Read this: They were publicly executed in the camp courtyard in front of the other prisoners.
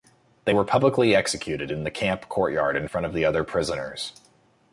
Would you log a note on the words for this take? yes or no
no